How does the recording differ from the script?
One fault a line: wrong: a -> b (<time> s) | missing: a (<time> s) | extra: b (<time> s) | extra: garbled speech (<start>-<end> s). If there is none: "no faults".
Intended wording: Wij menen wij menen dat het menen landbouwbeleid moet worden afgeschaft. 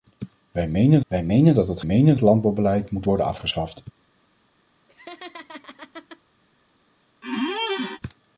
no faults